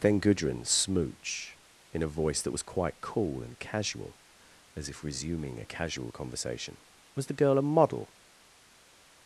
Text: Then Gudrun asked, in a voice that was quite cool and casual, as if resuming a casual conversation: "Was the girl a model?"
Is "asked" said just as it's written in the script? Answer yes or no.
no